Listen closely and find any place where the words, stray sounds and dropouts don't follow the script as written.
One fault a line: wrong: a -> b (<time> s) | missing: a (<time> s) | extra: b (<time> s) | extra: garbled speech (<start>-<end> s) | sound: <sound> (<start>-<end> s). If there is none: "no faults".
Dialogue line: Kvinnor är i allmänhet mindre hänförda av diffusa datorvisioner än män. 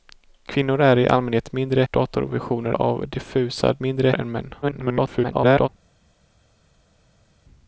wrong: hänförda -> datorvisioner (1.9 s)
wrong: datorvisioner -> mindre (3.8 s)
extra: garbled speech (4.6-5.7 s)